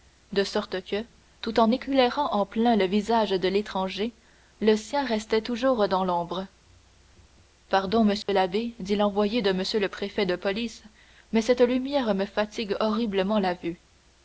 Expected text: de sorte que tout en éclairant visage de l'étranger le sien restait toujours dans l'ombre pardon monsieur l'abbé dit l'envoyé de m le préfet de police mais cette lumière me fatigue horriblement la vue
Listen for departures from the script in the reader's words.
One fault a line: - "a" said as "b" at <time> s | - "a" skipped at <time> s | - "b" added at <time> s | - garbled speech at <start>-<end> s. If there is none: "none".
- "en plein le" added at 2.3 s